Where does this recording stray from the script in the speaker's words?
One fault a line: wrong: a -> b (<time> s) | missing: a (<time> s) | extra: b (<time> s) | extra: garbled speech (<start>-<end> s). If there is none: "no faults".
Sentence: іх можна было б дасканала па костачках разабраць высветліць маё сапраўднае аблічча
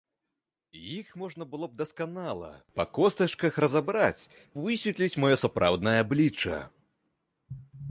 no faults